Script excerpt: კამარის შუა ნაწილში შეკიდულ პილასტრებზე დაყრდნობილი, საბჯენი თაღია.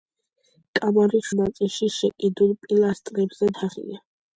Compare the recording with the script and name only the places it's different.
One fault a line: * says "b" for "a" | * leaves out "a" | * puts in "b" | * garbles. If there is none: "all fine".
* leaves out "შუა"
* leaves out "დაყრდნობილი საბჯენი"